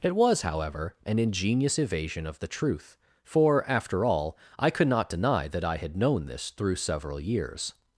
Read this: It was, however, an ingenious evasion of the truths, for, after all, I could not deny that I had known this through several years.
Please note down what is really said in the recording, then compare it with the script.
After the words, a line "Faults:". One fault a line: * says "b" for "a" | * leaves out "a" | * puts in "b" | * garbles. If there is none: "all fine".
It was, however, an ingenious evasion of the truth, for, after all, I could not deny that I had known this through several years.
Faults:
* says "truth" for "truths"